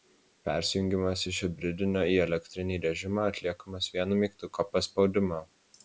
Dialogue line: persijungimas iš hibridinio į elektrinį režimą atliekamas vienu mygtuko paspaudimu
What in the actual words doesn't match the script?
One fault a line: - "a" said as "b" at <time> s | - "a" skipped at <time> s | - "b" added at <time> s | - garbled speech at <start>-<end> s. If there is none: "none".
none